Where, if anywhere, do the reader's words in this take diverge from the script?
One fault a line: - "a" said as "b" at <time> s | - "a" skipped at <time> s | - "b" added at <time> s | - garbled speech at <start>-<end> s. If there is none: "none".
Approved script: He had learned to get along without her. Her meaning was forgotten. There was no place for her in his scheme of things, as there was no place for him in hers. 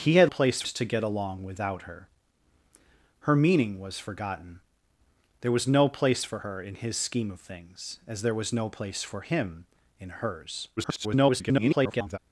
- "learned" said as "place" at 0.3 s
- garbled speech at 10.8-12.2 s